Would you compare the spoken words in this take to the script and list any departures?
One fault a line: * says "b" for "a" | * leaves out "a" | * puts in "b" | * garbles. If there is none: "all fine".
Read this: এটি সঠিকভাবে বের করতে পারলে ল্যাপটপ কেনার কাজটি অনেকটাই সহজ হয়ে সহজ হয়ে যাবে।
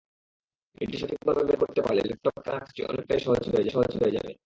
all fine